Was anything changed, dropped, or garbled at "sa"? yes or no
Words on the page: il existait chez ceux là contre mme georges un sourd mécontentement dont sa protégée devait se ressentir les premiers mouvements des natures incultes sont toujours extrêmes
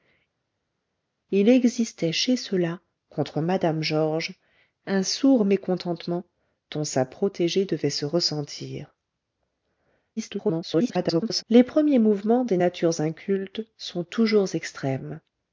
no